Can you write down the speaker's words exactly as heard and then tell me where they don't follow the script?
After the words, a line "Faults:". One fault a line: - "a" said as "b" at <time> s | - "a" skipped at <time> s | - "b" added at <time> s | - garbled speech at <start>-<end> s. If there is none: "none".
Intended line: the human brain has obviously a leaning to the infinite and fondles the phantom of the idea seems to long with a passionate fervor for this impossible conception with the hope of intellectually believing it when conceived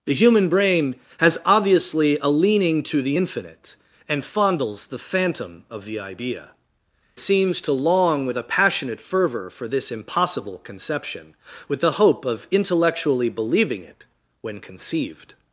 the human brain has obviously a leaning to the infinite and fondles the phantom of the idea seems to long with a passionate fervor for this impossible conception with the hope of intellectually believing it when conceived
Faults:
none